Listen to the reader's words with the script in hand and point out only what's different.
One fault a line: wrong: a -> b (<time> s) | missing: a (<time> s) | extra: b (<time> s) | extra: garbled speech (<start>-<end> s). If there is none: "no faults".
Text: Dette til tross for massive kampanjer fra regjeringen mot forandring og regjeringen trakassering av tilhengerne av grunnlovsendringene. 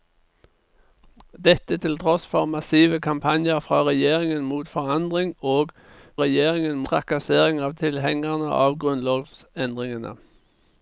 no faults